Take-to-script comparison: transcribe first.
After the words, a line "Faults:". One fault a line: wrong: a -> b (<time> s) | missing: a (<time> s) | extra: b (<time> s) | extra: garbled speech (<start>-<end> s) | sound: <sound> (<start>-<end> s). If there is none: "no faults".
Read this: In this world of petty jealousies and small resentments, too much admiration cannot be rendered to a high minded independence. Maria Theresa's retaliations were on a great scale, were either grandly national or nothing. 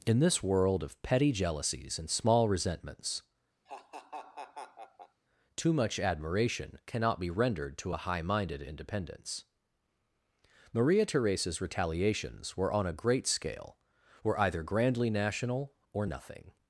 In this world of petty jealousies and small resentments, too much admiration cannot be rendered to a high minded independence. Maria Theresa's retaliations were on a great scale, were either grandly national or nothing.
Faults:
sound: laugh (3.7-5.2 s)